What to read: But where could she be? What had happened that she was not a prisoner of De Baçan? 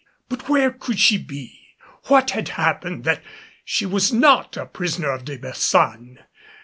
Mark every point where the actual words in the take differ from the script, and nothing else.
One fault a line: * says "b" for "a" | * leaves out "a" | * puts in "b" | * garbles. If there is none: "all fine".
all fine